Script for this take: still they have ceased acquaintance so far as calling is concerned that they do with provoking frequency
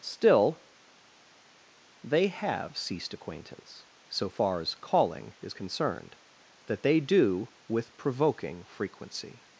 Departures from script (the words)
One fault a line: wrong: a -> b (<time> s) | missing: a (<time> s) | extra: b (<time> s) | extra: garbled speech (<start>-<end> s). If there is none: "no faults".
no faults